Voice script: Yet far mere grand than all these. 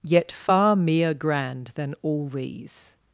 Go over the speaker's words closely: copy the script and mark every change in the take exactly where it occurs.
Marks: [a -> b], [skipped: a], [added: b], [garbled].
Yet far mere grand than all these.